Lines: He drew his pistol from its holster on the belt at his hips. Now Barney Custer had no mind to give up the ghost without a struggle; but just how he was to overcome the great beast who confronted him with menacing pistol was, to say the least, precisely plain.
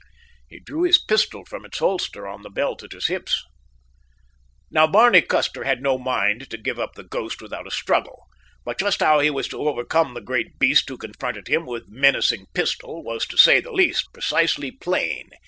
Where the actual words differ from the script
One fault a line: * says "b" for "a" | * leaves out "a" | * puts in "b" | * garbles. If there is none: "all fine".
all fine